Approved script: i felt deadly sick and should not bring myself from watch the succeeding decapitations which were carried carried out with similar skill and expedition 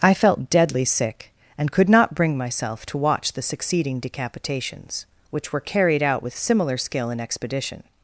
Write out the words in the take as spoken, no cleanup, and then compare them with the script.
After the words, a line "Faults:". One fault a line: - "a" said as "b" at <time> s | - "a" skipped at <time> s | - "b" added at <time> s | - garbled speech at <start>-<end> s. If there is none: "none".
i felt deadly sick and could not bring myself to watch the succeeding decapitations which were carried out with similar skill and expedition
Faults:
- "should" said as "could" at 1.7 s
- "from" said as "to" at 2.9 s
- "carried" skipped at 6.0 s